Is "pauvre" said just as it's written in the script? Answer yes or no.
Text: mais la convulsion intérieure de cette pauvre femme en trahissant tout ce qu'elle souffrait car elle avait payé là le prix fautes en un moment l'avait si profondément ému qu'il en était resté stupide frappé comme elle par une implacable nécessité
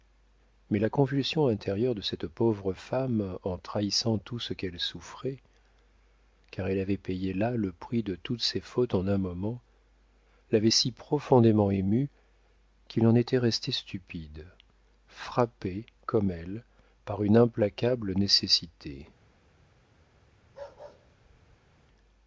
yes